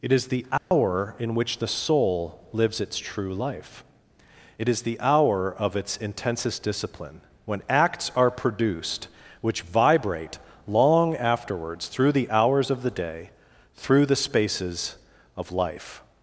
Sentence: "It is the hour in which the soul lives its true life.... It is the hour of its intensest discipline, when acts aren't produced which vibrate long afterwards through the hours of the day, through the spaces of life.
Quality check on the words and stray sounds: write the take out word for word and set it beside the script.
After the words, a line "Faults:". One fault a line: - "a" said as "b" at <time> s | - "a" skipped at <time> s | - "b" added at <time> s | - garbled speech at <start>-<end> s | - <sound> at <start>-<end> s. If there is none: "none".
"It is the hour in which the soul lives its true life.... It is the hour of its intensest discipline, when acts are produced which vibrate long afterwards through the hours of the day, through the spaces of life.
Faults:
- dropout at 0.6-0.7 s
- "aren't" said as "are" at 8.2 s